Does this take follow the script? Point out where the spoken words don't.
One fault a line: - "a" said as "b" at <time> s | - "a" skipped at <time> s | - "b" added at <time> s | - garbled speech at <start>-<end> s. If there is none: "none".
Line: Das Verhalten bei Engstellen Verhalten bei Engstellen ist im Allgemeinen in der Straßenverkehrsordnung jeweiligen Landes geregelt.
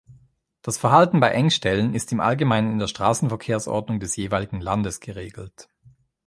- "Verhalten bei Engstellen" skipped at 1.9 s
- "des" added at 4.0 s